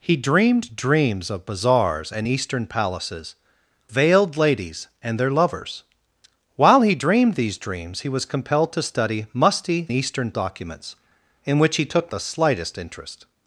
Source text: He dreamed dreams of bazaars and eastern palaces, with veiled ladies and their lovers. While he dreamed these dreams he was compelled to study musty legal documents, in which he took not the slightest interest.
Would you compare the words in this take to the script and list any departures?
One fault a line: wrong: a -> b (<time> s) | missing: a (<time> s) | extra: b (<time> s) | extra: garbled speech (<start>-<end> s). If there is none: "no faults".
missing: with (3.4 s)
wrong: legal -> eastern (9.9 s)
missing: not (12.1 s)